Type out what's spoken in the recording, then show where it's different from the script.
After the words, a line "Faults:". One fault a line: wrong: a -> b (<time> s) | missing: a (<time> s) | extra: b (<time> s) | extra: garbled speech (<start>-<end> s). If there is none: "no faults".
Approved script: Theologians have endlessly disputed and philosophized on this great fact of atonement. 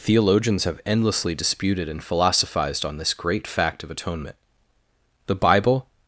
Theologians have endlessly disputed and philosophized on this great fact of atonement. The Bible
Faults:
extra: The Bible (5.3 s)